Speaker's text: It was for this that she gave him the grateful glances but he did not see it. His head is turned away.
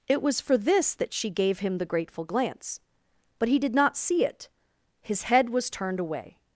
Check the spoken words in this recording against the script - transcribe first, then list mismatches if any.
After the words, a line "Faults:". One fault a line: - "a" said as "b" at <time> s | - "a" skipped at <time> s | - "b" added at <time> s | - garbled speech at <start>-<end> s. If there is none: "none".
It was for this that she gave him the grateful glance but he did not see it. His head was turned away.
Faults:
- "glances" said as "glance" at 2.2 s
- "is" said as "was" at 5.5 s